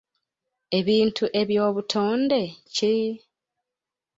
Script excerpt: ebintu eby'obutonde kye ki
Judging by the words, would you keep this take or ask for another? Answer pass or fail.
fail